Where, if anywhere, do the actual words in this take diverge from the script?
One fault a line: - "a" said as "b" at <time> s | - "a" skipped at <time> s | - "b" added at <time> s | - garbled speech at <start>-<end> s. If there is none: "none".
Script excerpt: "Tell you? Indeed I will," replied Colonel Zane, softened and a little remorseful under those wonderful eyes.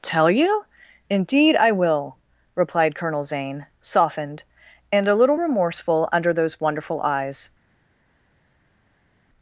none